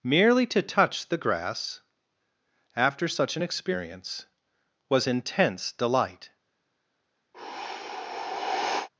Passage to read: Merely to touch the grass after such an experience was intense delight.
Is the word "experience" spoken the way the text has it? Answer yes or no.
yes